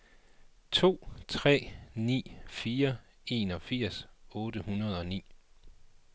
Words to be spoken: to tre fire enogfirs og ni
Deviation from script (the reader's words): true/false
true